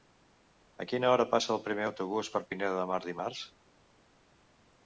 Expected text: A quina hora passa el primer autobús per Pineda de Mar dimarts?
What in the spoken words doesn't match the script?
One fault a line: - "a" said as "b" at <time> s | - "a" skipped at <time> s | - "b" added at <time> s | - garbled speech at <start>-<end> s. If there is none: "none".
none